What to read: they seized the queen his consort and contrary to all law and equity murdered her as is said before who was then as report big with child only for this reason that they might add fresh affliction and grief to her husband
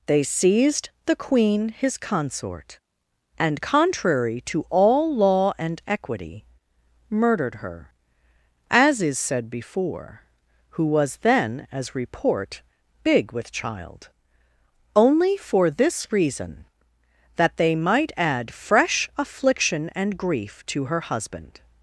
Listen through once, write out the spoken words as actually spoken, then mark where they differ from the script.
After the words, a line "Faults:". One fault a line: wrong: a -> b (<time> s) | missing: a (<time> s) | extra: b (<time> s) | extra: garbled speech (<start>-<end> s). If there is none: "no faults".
they seized the queen his consort and contrary to all law and equity murdered her as is said before who was then as report big with child only for this reason that they might add fresh affliction and grief to her husband
Faults:
no faults